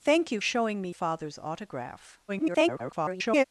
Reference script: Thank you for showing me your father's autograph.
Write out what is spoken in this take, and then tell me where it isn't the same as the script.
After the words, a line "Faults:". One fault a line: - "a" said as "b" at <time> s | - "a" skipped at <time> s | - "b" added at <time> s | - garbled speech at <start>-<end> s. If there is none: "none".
Thank you showing me father's autograph. [garbled]
Faults:
- "for" skipped at 0.4 s
- "your" skipped at 0.9 s
- garbled speech at 2.3-3.4 s